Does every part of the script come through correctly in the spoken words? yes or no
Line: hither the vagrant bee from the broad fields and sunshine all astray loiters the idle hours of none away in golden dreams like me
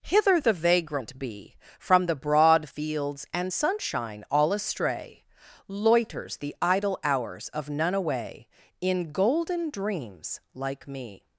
yes